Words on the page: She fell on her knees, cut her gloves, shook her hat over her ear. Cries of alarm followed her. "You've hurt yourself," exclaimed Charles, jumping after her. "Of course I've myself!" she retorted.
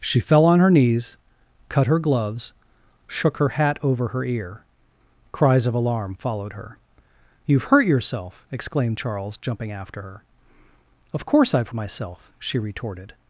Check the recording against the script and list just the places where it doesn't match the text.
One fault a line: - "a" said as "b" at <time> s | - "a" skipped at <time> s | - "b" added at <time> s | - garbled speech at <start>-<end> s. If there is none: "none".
none